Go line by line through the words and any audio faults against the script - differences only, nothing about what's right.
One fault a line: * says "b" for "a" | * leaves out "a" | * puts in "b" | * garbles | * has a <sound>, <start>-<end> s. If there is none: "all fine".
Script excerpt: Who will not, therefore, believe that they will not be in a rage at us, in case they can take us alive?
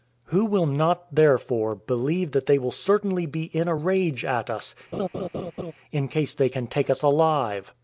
* says "certainly" for "not"
* has a laugh, 4.9-5.7 s